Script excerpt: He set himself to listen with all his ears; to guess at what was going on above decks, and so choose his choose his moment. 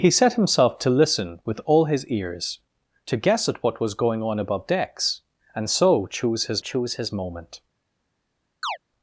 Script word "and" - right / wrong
right